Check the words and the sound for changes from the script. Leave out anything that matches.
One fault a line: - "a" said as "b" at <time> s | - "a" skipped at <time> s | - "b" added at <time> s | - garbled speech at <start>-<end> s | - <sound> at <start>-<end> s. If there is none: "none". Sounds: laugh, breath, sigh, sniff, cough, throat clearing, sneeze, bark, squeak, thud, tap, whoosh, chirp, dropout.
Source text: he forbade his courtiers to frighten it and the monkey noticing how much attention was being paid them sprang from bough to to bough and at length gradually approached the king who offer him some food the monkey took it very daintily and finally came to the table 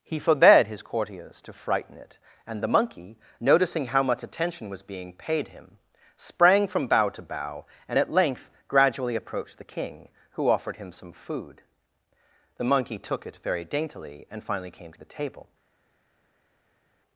- "them" said as "him" at 5.5 s
- "to" skipped at 7.2 s
- "offer" said as "offered" at 10.5 s